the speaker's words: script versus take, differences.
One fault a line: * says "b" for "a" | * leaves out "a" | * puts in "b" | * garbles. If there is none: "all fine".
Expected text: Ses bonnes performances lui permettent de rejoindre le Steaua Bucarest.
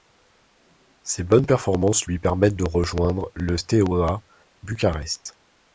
all fine